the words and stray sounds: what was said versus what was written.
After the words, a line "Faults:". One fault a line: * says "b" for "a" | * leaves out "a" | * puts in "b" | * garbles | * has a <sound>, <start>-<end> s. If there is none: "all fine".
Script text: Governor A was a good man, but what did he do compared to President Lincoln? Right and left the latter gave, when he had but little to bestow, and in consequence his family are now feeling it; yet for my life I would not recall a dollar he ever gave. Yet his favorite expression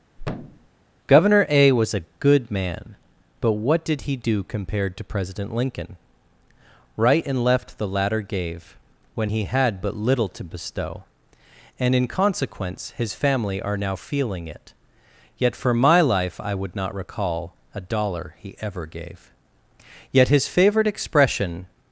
Governor A was a good man, but what did he do compared to President Lincoln? Right and left the latter gave, when he had but little to bestow, and in consequence his family are now feeling it; yet for my life I would not recall a dollar he ever gave. Yet his favorite expression
Faults:
* has a thud, 0.2-0.7 s